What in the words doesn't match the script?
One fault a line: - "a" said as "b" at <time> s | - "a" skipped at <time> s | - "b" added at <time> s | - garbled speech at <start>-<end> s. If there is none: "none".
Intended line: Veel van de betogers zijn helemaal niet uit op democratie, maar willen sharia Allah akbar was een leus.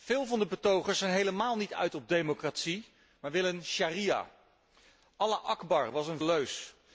none